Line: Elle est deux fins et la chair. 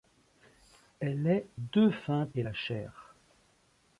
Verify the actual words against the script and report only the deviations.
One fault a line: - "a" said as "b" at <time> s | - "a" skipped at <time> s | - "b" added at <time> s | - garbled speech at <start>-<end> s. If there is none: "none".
none